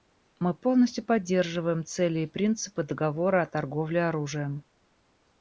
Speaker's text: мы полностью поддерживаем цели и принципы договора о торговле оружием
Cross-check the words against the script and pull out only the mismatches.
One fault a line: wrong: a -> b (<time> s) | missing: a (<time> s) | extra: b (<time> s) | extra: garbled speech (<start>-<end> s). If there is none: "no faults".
no faults